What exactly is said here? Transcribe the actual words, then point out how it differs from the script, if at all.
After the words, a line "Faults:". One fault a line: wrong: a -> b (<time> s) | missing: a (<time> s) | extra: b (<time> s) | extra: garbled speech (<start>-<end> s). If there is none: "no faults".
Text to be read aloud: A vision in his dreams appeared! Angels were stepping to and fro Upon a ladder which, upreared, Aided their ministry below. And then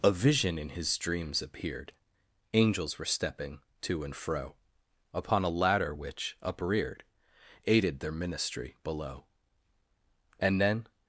A vision in his dreams appeared! Angels were stepping to and fro Upon a ladder which, upreared, Aided their ministry below. And then
Faults:
no faults